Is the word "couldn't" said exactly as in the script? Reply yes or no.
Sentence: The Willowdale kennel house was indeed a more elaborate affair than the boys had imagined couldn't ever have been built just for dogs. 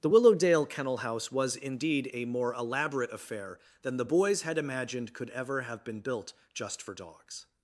no